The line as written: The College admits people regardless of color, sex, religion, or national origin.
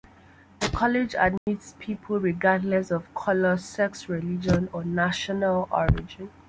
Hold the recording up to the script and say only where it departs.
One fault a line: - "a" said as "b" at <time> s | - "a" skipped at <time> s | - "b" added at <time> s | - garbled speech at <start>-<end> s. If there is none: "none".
none